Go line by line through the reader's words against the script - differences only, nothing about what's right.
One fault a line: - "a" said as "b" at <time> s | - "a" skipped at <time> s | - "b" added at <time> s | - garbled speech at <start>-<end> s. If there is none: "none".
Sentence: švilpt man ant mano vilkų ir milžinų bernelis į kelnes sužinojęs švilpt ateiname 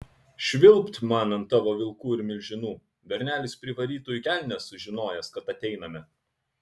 - "mano" said as "tavo" at 1.5 s
- "privarytų" added at 3.6 s
- "švilpt" said as "kad" at 5.4 s